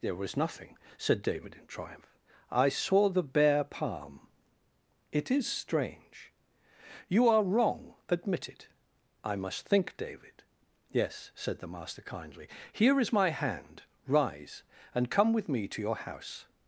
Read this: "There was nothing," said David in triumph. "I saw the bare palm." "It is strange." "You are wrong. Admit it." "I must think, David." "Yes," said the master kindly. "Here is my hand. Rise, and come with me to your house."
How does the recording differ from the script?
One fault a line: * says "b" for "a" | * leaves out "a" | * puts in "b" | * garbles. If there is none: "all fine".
all fine